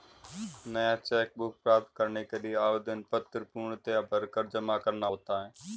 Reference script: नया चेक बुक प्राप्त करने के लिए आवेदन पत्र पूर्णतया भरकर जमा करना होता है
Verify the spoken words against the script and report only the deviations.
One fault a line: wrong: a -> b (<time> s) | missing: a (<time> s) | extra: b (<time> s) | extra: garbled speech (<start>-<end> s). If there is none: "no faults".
no faults